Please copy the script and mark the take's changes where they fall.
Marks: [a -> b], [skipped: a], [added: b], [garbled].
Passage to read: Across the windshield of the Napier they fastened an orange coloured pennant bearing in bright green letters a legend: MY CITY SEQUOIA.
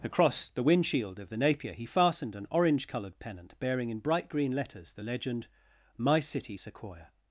Across the windshield of the Napier [they -> he] fastened an orange coloured pennant bearing in bright green letters [a -> the] legend: MY CITY SEQUOIA.